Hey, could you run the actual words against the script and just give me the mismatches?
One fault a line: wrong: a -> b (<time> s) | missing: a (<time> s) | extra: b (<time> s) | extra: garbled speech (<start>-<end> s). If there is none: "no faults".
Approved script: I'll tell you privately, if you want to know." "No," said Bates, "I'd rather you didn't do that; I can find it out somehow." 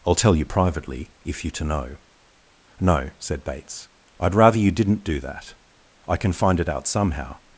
missing: want (1.5 s)